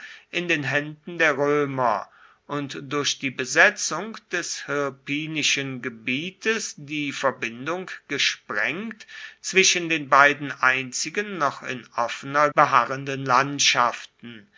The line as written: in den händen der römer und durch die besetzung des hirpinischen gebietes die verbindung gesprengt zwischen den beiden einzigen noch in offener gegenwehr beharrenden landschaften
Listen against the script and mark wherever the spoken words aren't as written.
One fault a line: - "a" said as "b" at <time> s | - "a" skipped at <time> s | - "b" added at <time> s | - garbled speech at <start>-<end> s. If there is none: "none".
- "gegenwehr" skipped at 12.5 s